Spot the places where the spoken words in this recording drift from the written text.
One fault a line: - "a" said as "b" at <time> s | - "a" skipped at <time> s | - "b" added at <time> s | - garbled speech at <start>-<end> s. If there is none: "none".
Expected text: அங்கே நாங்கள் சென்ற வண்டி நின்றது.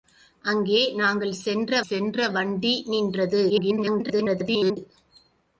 - "சென்ற" added at 1.9 s
- garbled speech at 3.5-4.8 s